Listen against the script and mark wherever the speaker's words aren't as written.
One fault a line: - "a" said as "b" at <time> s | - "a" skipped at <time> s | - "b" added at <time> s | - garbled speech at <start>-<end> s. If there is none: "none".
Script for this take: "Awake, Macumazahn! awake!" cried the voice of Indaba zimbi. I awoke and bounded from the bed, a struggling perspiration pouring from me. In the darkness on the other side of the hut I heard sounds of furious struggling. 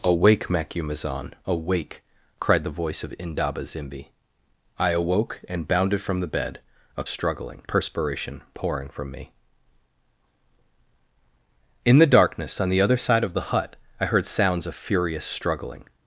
none